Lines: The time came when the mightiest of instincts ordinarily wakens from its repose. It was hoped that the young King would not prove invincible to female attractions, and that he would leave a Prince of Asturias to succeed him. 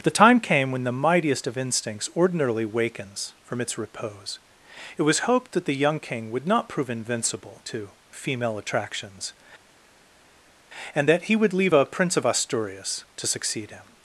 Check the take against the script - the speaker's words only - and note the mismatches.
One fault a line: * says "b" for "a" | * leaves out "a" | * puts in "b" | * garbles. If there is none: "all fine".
all fine